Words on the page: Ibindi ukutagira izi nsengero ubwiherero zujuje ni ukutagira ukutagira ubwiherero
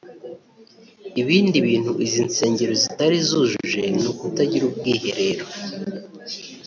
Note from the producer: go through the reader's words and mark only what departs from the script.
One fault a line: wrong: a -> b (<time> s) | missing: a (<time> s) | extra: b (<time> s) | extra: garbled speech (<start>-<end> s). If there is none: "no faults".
wrong: ukutagira -> bintu (1.6 s)
wrong: ubwiherero -> zitari (2.8 s)
missing: ukutagira (4.6 s)